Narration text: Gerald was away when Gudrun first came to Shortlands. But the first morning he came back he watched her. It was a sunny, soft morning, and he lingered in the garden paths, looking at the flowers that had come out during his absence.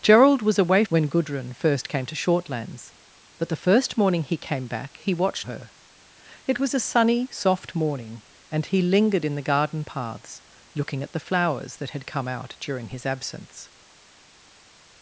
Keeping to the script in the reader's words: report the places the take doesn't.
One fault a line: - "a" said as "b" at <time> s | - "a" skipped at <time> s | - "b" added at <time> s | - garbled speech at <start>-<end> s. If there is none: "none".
none